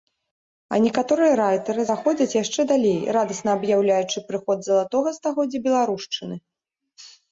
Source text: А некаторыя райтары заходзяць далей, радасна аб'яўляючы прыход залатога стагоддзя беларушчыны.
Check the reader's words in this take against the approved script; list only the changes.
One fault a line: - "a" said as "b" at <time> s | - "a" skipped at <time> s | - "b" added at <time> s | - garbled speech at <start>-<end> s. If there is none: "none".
- "яшчэ" added at 2.4 s